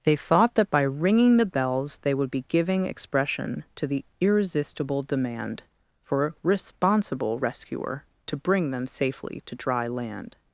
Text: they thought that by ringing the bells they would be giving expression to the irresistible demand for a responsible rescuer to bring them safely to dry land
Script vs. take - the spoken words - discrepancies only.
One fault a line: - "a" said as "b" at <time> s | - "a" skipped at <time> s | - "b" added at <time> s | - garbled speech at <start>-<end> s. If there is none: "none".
none